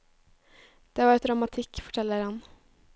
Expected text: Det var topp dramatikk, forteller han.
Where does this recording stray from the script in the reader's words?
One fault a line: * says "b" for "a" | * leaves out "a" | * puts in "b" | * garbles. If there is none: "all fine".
* leaves out "topp"